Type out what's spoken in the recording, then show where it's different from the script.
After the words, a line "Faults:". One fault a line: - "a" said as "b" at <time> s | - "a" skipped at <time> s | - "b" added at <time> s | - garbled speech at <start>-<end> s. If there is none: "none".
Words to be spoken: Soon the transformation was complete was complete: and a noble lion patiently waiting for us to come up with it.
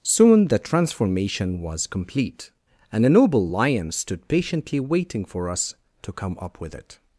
Soon the transformation was complete: and a noble lion stood patiently waiting for us to come up with it.
Faults:
- "was complete" skipped at 2.5 s
- "stood" added at 3.9 s